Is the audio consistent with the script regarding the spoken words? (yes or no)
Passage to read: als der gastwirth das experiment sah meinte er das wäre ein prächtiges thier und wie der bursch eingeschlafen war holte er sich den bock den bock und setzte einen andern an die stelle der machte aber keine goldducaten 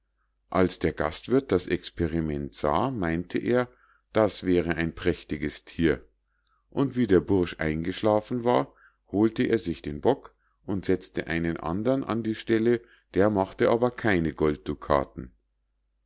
no